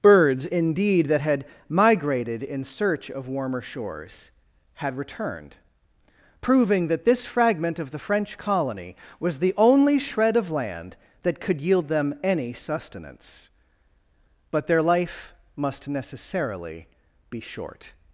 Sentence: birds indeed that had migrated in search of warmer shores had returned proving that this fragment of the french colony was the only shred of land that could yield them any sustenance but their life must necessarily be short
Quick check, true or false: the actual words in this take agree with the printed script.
true